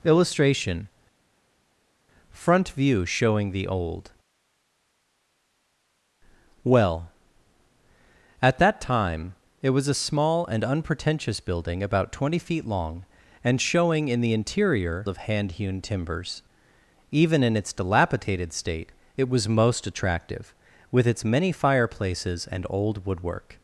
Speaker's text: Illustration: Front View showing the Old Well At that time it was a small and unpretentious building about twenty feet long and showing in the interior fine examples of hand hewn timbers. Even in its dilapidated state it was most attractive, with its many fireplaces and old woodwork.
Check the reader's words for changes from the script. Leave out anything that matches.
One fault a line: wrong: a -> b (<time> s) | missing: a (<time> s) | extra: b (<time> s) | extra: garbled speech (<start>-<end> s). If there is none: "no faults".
missing: fine examples (15.1 s)